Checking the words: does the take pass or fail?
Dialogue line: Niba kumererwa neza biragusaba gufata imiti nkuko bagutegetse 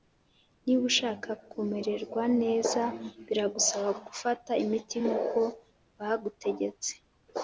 fail